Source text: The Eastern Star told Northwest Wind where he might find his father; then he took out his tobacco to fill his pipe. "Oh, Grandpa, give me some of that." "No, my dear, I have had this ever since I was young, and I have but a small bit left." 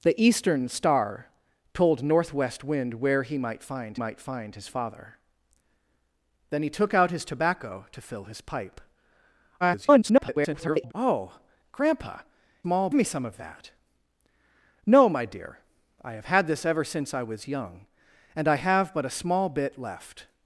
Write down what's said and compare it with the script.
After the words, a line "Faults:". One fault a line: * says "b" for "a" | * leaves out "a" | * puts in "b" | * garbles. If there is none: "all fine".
The Eastern Star told Northwest Wind where he might find might find his father; then he took out his tobacco to fill his pipe. [garbled] "Oh, Grandpa, small me some of that." "No, my dear, I have had this ever since I was young, and I have but a small bit left."
Faults:
* puts in "might find"
* garbles
* says "small" for "give"